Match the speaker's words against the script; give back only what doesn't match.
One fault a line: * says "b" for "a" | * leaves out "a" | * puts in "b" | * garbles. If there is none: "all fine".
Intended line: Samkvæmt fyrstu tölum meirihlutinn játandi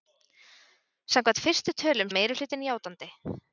all fine